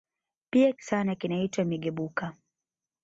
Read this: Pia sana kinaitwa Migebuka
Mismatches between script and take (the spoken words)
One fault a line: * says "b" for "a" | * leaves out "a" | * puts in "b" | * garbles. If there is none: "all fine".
all fine